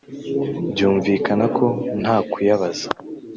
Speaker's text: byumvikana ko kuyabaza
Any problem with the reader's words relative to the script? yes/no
yes